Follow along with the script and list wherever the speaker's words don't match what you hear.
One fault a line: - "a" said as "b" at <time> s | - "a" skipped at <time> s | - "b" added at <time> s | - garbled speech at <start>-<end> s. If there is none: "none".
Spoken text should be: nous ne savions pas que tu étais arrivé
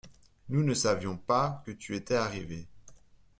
none